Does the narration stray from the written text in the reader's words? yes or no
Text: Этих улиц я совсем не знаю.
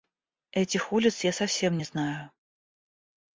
no